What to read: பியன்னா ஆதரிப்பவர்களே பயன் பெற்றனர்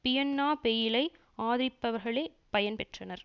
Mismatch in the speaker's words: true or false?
true